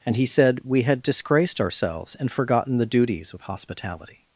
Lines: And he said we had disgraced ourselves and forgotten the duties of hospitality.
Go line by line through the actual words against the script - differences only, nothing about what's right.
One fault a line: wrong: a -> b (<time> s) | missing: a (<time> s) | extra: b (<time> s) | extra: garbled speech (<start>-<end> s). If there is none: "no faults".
no faults